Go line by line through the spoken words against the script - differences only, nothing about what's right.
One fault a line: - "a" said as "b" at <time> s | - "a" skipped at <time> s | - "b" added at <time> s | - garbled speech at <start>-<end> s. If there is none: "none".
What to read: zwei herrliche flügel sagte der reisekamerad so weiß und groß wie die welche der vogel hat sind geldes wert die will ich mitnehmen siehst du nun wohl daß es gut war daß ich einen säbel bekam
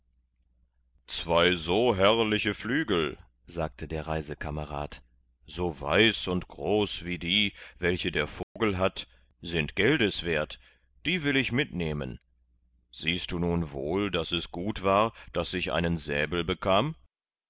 - "so" added at 1.5 s